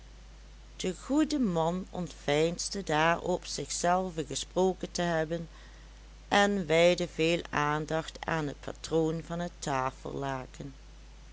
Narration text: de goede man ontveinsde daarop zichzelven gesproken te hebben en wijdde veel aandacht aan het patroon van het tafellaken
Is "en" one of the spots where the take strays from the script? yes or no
no